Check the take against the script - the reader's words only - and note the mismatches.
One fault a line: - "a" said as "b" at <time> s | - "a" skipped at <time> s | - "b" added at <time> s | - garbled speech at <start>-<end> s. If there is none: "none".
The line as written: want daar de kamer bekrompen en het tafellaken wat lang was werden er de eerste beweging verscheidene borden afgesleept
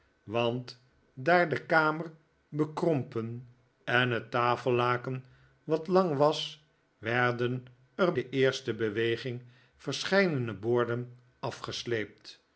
none